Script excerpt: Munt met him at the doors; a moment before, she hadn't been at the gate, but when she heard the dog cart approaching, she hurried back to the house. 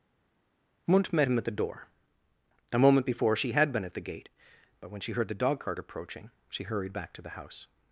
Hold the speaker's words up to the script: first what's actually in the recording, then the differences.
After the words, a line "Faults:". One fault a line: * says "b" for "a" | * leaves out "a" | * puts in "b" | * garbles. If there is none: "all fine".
Munt met him at the door; a moment before, she had been at the gate, but when she heard the dog cart approaching, she hurried back to the house.
Faults:
* says "door" for "doors"
* says "had" for "hadn't"